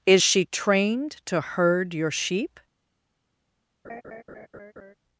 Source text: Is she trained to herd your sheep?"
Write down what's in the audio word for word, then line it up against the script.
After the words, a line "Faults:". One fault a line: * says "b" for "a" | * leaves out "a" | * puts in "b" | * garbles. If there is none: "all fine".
Is she trained to herd your sheep?"
Faults:
all fine